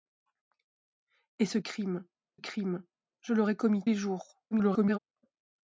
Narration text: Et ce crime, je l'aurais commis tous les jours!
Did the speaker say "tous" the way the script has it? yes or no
no